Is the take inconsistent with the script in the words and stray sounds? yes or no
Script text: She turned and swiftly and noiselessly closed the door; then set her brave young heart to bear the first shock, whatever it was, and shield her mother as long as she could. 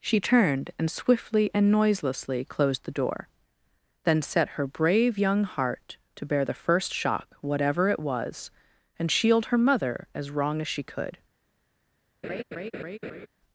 yes